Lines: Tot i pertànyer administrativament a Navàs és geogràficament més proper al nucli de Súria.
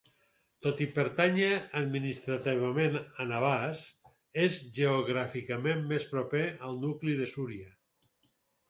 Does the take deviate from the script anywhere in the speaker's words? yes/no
no